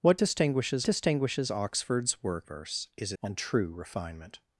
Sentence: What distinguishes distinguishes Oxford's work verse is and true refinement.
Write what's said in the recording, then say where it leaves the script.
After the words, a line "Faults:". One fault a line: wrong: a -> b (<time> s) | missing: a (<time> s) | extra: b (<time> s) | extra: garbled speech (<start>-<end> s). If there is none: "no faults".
What distinguishes distinguishes Oxford's work verse is and true refinement.
Faults:
no faults